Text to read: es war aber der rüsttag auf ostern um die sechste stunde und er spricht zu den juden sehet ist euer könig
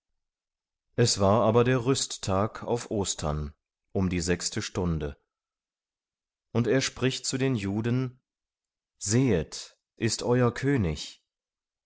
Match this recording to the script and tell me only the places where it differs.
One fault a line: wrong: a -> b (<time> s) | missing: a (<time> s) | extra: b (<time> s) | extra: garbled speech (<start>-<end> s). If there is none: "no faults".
no faults